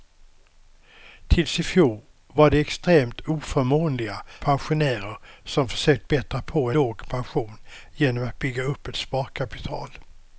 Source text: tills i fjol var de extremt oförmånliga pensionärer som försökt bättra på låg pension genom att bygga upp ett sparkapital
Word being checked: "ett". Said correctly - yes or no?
yes